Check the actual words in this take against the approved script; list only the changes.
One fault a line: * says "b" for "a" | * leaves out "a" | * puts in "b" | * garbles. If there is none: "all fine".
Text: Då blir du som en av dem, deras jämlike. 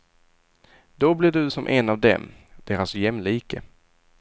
all fine